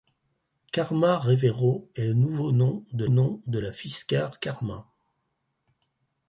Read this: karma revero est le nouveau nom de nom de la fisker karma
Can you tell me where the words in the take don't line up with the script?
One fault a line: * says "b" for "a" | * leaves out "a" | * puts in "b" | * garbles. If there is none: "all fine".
all fine